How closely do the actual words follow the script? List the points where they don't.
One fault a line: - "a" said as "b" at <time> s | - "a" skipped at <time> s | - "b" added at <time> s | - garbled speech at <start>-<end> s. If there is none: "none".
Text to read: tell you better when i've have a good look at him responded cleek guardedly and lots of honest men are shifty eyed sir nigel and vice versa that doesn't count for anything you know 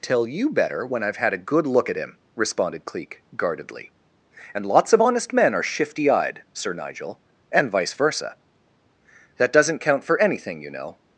- "have" said as "had" at 1.2 s